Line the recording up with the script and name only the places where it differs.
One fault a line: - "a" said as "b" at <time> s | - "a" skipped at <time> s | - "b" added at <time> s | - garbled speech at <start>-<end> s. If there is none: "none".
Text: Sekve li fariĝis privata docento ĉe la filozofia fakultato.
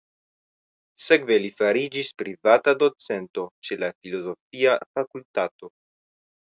none